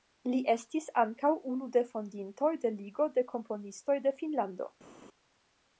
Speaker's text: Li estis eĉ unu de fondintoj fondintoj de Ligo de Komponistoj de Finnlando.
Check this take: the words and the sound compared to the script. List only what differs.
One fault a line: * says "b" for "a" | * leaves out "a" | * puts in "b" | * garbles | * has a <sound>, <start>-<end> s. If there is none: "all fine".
* says "ankaŭ" for "eĉ"
* leaves out "fondintoj"